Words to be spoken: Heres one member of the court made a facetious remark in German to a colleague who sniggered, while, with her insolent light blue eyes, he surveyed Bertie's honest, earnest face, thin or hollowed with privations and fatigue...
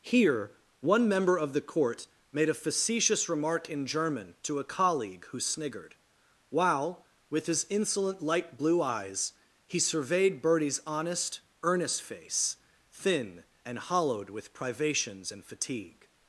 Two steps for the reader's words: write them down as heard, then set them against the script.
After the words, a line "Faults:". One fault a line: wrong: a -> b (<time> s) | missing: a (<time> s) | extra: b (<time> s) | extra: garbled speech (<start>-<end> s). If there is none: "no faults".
Here one member of the court made a facetious remark in German to a colleague who sniggered, while, with his insolent light blue eyes, he surveyed Bertie's honest, earnest face, thin and hollowed with privations and fatigue...
Faults:
wrong: Heres -> Here (0.0 s)
wrong: her -> his (7.5 s)
wrong: or -> and (13.7 s)